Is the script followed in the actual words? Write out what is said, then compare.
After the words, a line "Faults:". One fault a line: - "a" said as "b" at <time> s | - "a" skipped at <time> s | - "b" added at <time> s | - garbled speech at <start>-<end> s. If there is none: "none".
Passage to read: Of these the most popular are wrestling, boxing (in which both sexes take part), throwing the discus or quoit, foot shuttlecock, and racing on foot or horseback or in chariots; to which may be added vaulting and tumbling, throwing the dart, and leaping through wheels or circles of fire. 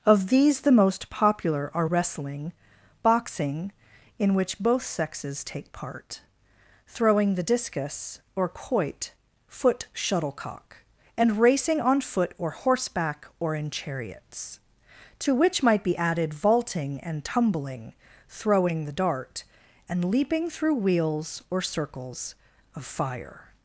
Of these the most popular are wrestling, boxing (in which both sexes take part), throwing the discus or quoit, foot shuttlecock, and racing on foot or horseback or in chariots; to which might be added vaulting and tumbling, throwing the dart, and leaping through wheels or circles of fire.
Faults:
- "may" said as "might" at 15.6 s